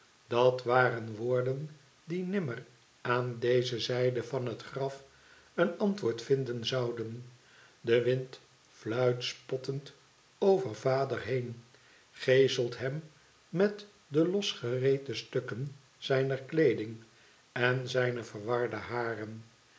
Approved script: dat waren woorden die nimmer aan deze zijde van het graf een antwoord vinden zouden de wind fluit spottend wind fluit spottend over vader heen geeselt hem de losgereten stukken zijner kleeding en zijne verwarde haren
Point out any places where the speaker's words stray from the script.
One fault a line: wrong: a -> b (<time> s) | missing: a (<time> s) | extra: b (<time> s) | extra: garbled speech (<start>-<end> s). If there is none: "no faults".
missing: wind fluit spottend (9.9 s)
extra: met (13.5 s)